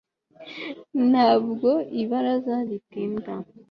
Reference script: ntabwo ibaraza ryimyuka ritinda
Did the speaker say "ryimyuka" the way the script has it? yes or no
no